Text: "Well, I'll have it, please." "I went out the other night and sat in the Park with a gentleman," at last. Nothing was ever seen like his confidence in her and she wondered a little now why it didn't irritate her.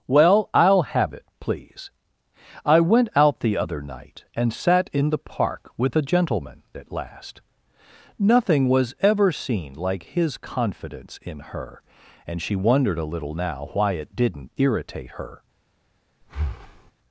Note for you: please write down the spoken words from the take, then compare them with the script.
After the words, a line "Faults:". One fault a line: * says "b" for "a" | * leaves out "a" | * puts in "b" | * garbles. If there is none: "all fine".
"Well, I'll have it, please." "I went out the other night and sat in the Park with a gentleman," at last. Nothing was ever seen like his confidence in her and she wondered a little now why it didn't irritate her.
Faults:
all fine